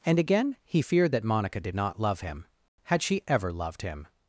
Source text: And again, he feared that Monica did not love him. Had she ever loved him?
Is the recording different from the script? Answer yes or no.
no